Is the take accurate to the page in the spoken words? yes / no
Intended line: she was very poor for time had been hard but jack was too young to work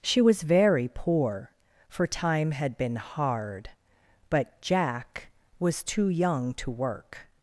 yes